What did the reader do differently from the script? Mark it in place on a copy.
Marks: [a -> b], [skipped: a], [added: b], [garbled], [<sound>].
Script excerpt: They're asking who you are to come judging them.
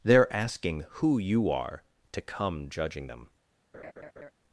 They're asking who you are to come judging them. [laugh]